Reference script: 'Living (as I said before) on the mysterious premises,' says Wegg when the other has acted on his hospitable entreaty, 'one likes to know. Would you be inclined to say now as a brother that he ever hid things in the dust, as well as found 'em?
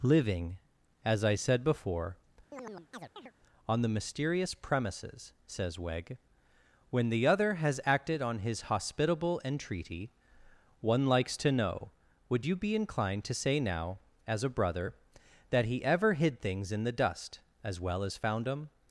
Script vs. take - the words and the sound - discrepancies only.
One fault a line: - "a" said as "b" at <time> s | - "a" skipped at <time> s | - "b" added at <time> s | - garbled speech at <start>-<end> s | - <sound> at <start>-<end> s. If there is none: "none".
- chirp at 2.5-3.3 s